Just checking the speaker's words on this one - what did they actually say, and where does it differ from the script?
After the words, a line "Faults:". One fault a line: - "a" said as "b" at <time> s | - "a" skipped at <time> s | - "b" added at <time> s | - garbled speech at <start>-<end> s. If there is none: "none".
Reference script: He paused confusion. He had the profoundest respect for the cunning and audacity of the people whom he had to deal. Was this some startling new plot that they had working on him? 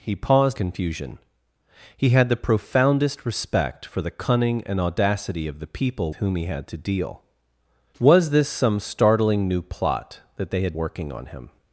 He paused confusion. He had the profoundest respect for the cunning and audacity of the people whom he had to deal. Was this some startling new plot that they had working on him?
Faults:
none